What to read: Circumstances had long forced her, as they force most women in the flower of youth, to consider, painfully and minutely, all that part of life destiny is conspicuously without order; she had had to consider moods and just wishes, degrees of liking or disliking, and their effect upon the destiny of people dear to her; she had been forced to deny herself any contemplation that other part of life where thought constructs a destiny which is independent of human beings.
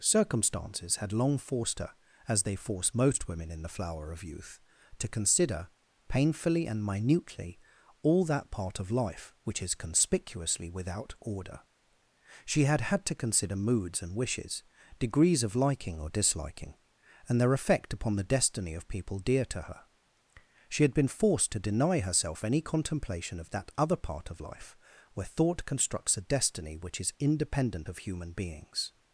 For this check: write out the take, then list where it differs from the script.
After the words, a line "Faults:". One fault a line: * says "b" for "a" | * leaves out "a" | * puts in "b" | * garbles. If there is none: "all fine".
Circumstances had long forced her, as they force most women in the flower of youth, to consider, painfully and minutely, all that part of life which is conspicuously without order; she had had to consider moods and wishes, degrees of liking or disliking, and their effect upon the destiny of people dear to her; she had been forced to deny herself any contemplation of that other part of life where thought constructs a destiny which is independent of human beings.
Faults:
* says "which" for "destiny"
* leaves out "just"
* puts in "of"